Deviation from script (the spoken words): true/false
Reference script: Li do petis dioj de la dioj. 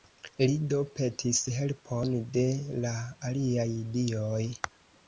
true